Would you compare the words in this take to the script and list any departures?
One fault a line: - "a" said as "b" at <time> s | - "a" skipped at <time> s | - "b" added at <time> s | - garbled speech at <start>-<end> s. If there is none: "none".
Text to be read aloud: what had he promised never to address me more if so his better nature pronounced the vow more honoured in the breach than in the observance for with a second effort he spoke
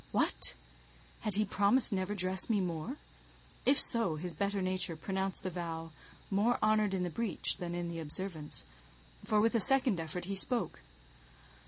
- "to" skipped at 2.1 s